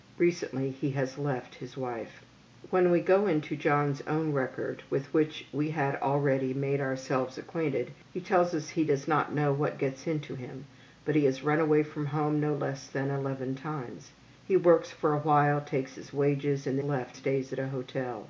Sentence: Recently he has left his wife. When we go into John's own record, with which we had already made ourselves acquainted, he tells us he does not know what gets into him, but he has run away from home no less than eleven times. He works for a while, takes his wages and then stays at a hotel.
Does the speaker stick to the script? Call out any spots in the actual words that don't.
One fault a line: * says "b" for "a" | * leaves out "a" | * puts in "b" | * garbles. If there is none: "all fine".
* says "left" for "then"